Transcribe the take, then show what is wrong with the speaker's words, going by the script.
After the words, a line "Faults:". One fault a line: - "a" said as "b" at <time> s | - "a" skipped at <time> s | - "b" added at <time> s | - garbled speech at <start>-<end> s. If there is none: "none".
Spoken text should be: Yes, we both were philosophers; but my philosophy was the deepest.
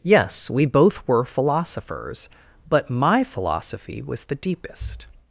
Yes, we both were philosophers; but my philosophy was the deepest.
Faults:
none